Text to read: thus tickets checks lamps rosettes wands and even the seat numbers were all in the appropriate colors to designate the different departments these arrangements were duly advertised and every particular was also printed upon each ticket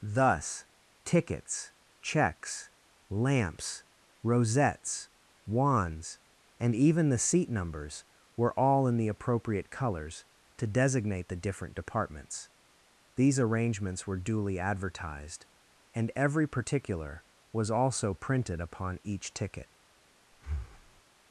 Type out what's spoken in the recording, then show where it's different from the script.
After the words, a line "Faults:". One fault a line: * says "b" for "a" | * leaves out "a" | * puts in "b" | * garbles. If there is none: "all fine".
thus tickets checks lamps rosettes wands and even the seat numbers were all in the appropriate colors to designate the different departments these arrangements were duly advertised and every particular was also printed upon each ticket
Faults:
all fine